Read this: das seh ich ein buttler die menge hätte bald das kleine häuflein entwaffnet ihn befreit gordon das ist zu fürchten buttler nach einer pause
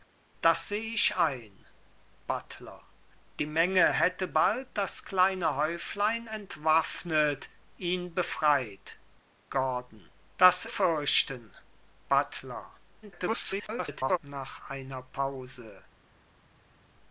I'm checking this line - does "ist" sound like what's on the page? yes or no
no